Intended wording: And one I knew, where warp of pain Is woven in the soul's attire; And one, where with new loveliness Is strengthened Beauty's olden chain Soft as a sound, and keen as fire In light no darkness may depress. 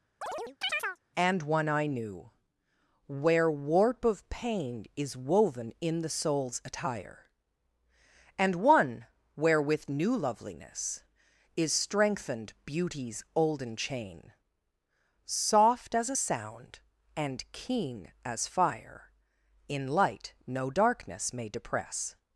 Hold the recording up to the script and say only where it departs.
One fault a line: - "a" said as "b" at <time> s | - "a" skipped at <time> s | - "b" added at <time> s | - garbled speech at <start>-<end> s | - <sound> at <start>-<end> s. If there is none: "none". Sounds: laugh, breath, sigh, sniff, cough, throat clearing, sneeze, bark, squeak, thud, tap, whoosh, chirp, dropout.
- chirp at 0.2-1.0 s